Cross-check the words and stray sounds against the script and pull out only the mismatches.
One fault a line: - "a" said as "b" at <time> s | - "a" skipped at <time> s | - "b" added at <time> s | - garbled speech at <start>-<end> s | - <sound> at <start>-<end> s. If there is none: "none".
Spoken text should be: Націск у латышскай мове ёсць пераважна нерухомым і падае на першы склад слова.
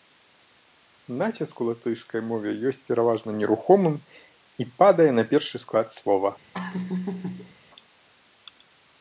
- laugh at 6.5-7.5 s